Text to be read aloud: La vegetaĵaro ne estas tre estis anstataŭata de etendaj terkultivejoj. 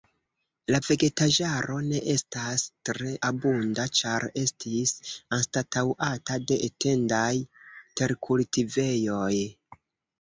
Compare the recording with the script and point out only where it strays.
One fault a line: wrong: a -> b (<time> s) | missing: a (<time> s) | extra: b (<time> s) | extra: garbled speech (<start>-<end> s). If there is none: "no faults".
extra: abunda ĉar (3.3 s)